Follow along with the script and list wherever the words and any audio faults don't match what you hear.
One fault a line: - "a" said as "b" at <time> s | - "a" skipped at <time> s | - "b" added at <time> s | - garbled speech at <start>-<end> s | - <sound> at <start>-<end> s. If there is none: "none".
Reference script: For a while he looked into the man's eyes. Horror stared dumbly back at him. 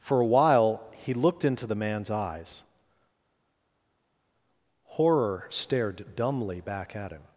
none